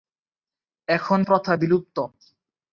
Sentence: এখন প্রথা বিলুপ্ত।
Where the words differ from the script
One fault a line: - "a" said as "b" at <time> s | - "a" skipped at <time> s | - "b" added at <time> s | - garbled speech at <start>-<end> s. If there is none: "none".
none